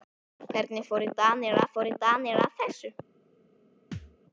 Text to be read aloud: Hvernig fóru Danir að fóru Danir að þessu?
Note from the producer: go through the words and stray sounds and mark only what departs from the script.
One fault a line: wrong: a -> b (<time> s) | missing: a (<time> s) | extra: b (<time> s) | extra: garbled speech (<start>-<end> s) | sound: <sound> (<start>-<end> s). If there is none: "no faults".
sound: thud (3.9-4.2 s)